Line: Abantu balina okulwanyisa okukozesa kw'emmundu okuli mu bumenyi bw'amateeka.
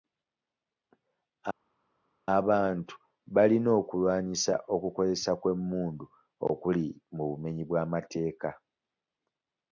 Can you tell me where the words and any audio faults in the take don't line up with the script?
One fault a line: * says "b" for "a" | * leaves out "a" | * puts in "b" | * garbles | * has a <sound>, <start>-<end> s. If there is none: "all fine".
all fine